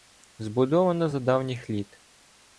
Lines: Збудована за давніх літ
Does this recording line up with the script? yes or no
yes